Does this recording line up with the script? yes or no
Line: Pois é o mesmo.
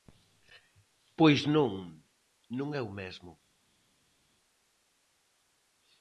no